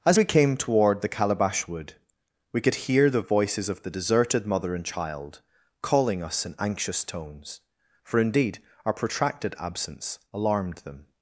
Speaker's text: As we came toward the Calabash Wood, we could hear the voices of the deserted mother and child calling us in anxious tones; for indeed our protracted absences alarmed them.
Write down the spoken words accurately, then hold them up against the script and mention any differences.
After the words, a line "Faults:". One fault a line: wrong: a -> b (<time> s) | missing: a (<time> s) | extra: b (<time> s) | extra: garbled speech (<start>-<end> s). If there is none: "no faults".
As we came toward the Calabash Wood, we could hear the voices of the deserted mother and child calling us in anxious tones; for indeed our protracted absence alarmed them.
Faults:
wrong: absences -> absence (9.6 s)